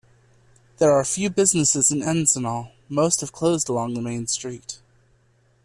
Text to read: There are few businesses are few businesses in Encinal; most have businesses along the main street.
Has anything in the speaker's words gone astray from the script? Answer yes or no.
yes